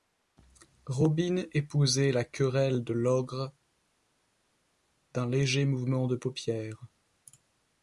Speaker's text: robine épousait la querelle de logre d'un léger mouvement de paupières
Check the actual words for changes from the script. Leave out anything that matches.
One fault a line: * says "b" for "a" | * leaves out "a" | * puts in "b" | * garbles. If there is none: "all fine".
all fine